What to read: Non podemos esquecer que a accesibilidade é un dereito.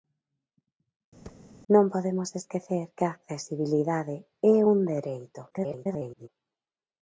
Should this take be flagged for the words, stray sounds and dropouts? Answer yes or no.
yes